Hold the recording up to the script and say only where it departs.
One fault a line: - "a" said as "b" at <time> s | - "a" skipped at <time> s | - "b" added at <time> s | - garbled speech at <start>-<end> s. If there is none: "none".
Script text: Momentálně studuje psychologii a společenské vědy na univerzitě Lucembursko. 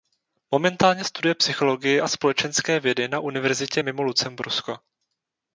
- "mimo" added at 3.8 s